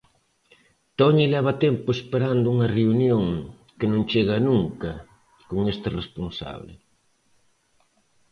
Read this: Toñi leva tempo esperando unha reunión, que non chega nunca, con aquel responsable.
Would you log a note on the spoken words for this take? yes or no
yes